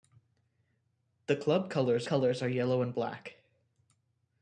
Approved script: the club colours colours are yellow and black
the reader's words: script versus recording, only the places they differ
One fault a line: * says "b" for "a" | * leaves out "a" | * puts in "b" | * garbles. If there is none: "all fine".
all fine